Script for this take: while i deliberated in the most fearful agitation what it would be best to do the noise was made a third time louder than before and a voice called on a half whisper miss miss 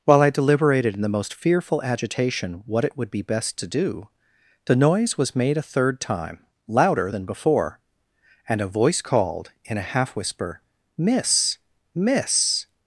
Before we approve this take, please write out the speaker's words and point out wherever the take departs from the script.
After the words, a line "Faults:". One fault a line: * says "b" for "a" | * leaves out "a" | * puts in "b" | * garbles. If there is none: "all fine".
while i deliberated in the most fearful agitation what it would be best to do the noise was made a third time louder than before and a voice called in a half whisper miss miss
Faults:
* says "in" for "on"